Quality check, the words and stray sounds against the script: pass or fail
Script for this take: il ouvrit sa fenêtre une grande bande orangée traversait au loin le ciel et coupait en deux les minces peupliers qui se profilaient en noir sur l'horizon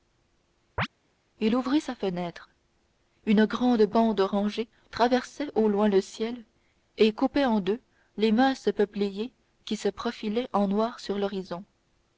fail